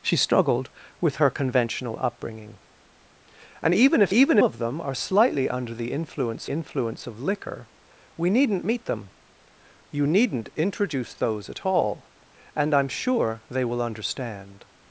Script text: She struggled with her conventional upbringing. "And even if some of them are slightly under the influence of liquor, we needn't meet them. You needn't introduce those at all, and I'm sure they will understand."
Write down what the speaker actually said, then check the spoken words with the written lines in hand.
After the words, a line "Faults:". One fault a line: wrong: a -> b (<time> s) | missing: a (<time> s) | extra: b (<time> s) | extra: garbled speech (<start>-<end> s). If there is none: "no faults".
She struggled with her conventional upbringing. "And even if even of them are slightly under the influence influence of liquor, we needn't meet them. You needn't introduce those at all, and I'm sure they will understand."
Faults:
wrong: some -> even (4.1 s)
extra: influence (6.5 s)